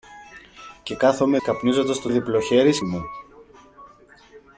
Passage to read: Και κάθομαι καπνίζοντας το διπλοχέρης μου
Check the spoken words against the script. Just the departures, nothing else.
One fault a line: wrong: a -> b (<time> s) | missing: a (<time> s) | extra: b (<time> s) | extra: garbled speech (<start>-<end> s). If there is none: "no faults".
no faults